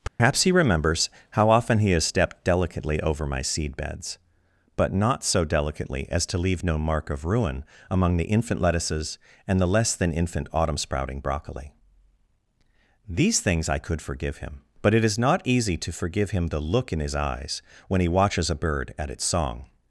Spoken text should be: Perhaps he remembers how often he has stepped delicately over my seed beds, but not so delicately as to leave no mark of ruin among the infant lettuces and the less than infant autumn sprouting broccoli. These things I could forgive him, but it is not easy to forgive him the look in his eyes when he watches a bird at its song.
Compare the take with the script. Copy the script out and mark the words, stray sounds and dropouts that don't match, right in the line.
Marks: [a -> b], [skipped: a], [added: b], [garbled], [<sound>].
Perhaps [dropout] he remembers how often he has stepped delicately over my seed beds, but not so delicately as to leave no mark of ruin among the infant lettuces and the less than infant autumn sprouting broccoli. These things I could forgive him, but it is not easy to forgive him the look in his eyes when he watches a bird at its song.